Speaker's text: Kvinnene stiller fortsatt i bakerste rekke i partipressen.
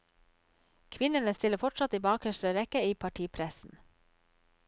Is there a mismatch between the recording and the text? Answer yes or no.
no